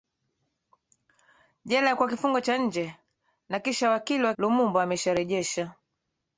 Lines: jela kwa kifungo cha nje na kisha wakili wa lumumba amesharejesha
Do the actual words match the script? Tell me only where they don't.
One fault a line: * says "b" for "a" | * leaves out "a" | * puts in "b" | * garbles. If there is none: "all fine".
all fine